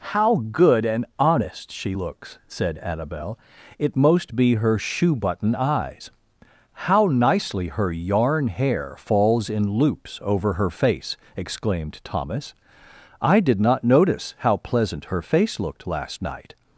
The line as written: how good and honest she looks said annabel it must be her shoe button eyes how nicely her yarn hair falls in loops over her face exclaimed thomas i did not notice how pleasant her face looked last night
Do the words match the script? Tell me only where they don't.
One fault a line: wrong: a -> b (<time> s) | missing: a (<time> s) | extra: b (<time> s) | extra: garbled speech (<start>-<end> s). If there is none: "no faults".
wrong: must -> most (3.9 s)